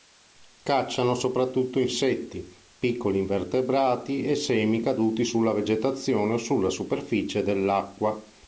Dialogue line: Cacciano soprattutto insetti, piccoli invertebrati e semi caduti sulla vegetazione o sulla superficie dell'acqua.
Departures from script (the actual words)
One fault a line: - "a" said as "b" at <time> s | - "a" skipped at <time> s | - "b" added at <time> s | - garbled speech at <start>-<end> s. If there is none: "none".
none